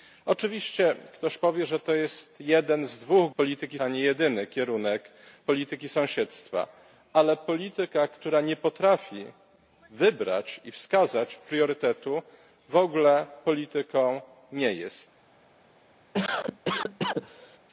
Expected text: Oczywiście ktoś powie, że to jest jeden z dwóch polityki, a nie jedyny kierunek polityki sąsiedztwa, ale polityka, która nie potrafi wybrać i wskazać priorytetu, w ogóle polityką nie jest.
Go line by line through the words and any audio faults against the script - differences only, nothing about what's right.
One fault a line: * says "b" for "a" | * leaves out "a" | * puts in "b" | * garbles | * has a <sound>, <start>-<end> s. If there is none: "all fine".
* has a cough, 16.1-17.6 s